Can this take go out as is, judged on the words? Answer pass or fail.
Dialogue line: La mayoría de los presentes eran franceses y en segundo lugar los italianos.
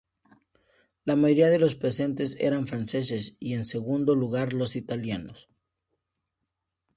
pass